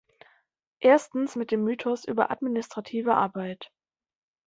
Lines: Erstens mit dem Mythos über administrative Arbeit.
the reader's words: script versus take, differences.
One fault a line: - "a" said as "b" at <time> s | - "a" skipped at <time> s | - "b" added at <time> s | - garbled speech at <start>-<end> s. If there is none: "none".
none